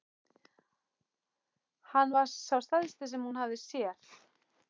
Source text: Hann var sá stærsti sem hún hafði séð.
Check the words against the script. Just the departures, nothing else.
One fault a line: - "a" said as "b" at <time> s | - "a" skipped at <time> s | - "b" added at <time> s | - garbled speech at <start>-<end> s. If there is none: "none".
none